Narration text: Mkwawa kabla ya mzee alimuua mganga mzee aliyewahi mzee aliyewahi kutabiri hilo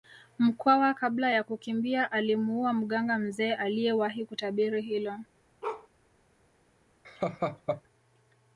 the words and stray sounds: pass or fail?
fail